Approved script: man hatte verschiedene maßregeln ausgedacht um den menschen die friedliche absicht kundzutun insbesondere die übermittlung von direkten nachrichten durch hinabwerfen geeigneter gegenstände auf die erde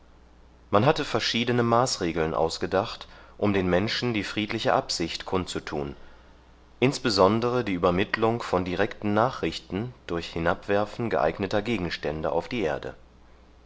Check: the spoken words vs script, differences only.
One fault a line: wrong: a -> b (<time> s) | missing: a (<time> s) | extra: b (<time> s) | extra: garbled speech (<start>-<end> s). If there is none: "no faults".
no faults